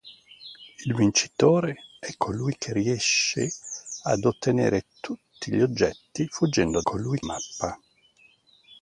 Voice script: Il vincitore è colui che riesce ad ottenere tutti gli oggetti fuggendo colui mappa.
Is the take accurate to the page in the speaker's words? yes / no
yes